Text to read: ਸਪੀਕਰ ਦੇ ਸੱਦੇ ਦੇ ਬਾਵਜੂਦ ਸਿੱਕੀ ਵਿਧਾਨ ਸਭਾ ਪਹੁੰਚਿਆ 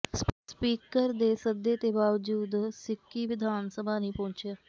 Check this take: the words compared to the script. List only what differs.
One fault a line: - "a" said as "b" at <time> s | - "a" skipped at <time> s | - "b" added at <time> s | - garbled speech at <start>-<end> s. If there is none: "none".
- "ਨਹੀਂ" added at 4.0 s